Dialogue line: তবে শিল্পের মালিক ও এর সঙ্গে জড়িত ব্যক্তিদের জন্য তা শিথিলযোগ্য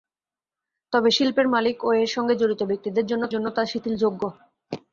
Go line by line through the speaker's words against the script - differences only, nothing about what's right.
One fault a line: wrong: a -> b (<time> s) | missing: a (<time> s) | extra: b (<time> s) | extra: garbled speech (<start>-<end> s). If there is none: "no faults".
extra: জন্য (3.3 s)